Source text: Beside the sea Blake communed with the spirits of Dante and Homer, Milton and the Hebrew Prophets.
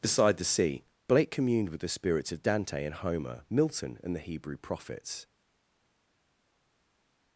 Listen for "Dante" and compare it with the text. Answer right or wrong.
right